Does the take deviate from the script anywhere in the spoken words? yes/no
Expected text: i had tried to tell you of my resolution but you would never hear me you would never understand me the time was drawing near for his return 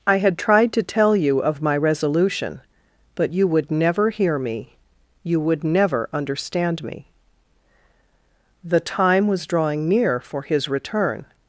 no